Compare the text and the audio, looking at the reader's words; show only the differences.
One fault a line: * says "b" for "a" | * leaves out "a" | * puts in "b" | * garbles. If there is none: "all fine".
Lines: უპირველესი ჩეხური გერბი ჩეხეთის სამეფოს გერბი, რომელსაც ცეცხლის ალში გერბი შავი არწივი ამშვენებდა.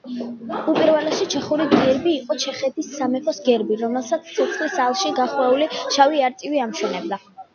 * puts in "იყო"
* says "გახვეული" for "გერბი"